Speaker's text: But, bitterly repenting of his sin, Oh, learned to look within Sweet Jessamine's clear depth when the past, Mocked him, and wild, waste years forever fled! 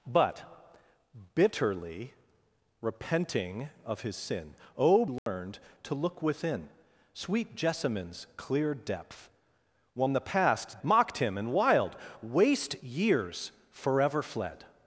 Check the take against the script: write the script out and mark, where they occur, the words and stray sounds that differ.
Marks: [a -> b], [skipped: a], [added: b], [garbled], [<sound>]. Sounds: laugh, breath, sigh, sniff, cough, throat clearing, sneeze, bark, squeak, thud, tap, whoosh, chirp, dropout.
But, bitterly repenting of his sin, Oh, learned [dropout] to look within Sweet Jessamine's clear depth when the past, Mocked him, and wild, waste years forever fled!